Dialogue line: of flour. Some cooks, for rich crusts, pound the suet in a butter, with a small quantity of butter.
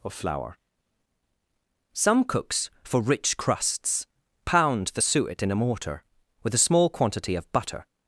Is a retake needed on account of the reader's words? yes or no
yes